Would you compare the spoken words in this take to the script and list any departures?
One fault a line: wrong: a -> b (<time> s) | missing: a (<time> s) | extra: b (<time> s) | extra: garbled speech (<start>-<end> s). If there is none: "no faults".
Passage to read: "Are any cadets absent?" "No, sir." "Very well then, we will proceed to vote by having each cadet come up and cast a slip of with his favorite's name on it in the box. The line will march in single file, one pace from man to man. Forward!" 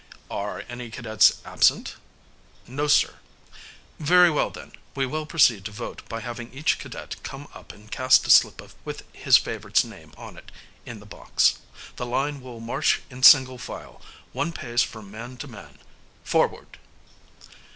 no faults